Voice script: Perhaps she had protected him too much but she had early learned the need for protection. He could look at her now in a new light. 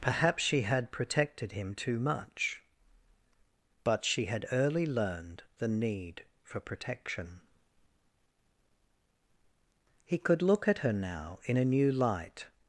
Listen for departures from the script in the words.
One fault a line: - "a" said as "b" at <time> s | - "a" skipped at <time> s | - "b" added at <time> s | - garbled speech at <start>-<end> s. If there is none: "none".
none